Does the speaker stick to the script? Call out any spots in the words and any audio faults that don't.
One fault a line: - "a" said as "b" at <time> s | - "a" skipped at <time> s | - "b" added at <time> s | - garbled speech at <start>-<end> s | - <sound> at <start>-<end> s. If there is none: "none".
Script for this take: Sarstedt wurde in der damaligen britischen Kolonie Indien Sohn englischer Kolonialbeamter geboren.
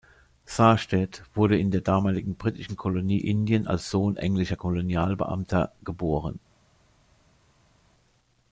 - "als" added at 3.7 s